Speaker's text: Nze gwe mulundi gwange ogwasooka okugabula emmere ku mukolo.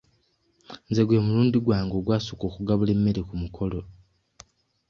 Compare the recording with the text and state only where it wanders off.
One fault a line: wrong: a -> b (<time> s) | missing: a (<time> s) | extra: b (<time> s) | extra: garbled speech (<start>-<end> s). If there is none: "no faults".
no faults